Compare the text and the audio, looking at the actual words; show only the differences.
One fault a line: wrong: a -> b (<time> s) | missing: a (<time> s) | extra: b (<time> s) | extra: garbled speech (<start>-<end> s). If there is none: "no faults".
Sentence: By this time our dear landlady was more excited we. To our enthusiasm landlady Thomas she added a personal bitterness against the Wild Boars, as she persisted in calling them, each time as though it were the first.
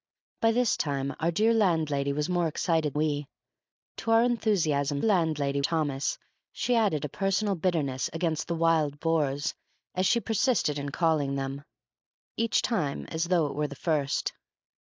no faults